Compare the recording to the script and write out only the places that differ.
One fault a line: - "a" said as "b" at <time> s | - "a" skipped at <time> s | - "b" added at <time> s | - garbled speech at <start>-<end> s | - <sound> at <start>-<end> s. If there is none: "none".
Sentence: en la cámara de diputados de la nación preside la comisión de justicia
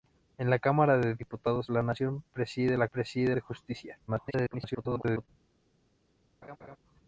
- "comisión" said as "preside" at 2.9 s
- garbled speech at 4.1-5.3 s
- laugh at 6.4-6.8 s